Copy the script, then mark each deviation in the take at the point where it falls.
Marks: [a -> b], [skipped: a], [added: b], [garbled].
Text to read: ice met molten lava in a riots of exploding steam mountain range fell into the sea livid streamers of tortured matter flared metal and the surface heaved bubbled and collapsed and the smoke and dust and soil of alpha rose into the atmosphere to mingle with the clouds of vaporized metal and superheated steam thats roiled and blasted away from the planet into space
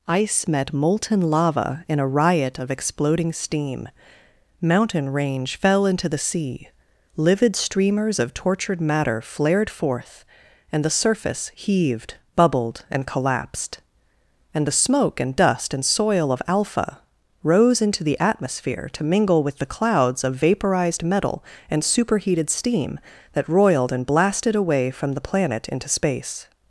ice met molten lava in a [riots -> riot] of exploding steam mountain range fell into the sea livid streamers of tortured matter flared [metal -> forth] and the surface heaved bubbled and collapsed and the smoke and dust and soil of alpha rose into the atmosphere to mingle with the clouds of vaporized metal and superheated steam [thats -> that] roiled and blasted away from the planet into space